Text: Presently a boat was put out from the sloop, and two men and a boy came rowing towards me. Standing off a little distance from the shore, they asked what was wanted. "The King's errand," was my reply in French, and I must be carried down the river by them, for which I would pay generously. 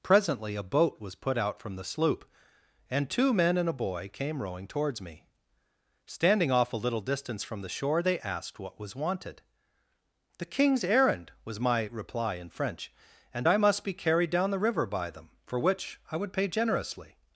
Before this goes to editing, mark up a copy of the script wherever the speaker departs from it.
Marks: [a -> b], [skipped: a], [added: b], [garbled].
Presently a boat was put out from the sloop, and two men and a boy came rowing towards me. Standing off a little distance from the shore, they asked what was wanted. "The King's errand," was my reply in French, and I must be carried down the river by them, for which I would pay generously.